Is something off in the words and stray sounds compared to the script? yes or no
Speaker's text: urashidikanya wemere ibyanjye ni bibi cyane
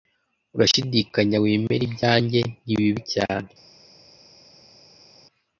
no